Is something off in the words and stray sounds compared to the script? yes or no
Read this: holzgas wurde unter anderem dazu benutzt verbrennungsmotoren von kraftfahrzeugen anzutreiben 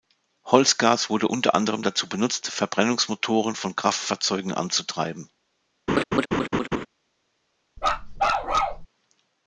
yes